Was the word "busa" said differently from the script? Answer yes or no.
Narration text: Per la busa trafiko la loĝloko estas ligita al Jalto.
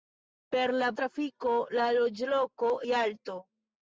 yes